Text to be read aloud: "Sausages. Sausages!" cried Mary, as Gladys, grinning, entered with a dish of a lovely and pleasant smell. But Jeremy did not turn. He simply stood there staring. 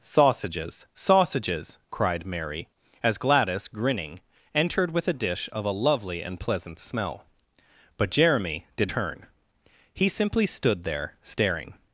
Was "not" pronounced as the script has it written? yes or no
no